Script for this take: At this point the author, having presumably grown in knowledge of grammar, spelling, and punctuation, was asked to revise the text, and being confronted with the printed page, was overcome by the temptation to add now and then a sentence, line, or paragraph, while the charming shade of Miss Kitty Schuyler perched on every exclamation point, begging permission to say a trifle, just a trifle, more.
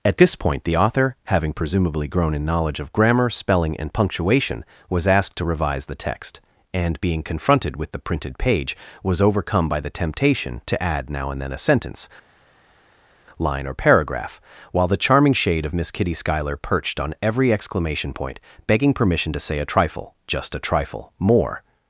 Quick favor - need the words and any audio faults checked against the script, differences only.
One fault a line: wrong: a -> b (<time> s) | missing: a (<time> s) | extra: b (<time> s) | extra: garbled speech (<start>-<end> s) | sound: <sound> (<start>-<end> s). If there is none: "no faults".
no faults